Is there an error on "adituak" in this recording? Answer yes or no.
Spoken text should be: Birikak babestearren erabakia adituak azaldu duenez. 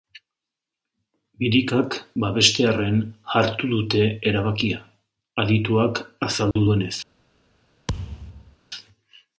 no